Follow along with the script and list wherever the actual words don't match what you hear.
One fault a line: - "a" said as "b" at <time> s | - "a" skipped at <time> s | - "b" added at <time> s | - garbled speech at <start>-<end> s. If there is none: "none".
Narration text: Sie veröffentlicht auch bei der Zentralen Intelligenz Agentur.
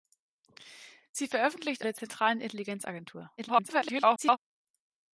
- "auch bei" skipped at 1.9 s
- garbled speech at 3.4-4.4 s